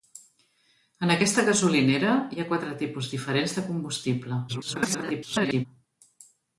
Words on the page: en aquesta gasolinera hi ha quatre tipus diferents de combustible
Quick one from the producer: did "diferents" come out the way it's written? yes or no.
yes